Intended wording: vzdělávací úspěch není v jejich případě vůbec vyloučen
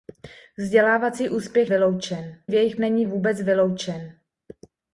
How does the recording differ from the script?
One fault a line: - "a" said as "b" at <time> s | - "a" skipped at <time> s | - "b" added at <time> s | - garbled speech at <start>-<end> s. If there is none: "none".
- "není" said as "vyloučen" at 1.7 s
- "případě" said as "není" at 2.8 s